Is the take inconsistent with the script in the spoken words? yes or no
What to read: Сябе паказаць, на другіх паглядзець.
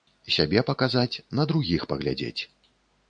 no